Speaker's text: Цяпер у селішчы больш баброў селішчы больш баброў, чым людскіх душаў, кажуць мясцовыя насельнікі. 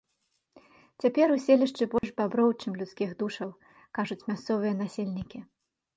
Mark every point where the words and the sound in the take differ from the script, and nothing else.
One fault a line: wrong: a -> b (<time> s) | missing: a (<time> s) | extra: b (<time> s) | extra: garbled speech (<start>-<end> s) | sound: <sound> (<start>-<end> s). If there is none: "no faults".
sound: dropout (2.0-2.0 s)
missing: селішчы больш баброў (2.5 s)